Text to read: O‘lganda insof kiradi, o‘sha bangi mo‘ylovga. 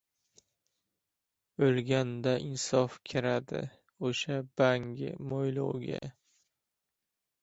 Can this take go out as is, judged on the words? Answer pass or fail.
pass